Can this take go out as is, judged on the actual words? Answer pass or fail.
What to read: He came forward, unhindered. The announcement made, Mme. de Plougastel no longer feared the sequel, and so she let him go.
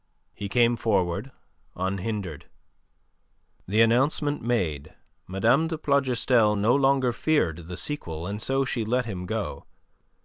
pass